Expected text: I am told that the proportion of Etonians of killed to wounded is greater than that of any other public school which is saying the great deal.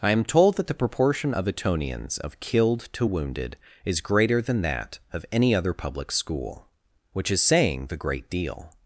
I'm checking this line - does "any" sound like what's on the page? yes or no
yes